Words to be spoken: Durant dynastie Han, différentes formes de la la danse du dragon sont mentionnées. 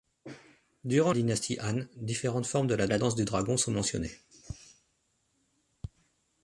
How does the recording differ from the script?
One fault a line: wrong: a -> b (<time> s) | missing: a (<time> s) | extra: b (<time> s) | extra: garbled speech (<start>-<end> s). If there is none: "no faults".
no faults